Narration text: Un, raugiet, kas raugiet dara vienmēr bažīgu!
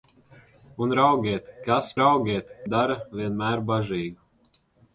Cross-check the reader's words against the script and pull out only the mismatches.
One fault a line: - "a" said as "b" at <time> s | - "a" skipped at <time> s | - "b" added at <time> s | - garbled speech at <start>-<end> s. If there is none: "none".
none